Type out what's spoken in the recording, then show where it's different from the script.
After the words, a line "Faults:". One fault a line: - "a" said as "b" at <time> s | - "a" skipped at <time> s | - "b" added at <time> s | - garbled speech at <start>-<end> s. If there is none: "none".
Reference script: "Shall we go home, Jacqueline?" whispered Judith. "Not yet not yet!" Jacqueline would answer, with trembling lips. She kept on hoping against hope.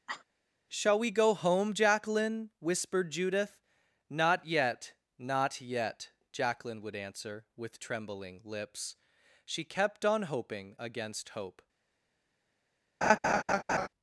"Shall we go home, Jacqueline?" whispered Judith. "Not yet not yet!" Jacqueline would answer, with trembling lips. She kept on hoping against hope.
Faults:
none